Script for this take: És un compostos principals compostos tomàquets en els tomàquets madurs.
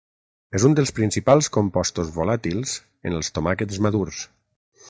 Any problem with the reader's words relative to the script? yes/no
yes